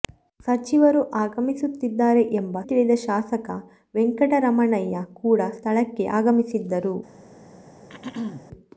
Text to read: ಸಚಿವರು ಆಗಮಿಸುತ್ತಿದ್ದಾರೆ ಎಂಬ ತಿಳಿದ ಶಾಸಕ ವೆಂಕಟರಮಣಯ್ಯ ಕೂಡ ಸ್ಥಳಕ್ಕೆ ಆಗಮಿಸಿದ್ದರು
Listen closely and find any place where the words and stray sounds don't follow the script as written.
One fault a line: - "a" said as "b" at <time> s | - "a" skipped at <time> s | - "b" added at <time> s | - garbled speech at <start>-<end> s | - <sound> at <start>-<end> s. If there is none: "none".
- throat clearing at 7.9-8.5 s